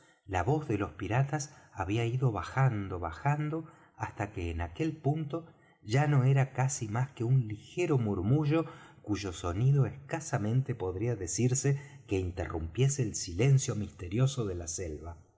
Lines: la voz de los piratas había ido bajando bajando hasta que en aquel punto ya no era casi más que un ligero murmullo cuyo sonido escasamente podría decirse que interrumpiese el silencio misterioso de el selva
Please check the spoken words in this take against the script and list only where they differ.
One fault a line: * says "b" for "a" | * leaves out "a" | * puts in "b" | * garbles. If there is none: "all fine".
* says "la" for "el"